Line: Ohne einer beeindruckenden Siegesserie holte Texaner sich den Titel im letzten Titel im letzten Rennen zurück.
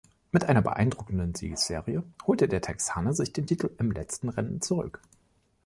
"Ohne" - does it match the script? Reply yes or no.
no